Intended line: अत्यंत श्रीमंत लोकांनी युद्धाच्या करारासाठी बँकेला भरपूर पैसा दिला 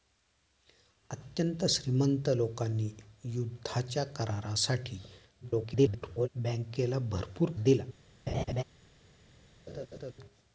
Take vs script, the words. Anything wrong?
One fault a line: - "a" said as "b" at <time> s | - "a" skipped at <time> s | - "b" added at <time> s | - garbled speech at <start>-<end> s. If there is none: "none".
- garbled speech at 5.4-6.3 s
- "पैसा" skipped at 7.5 s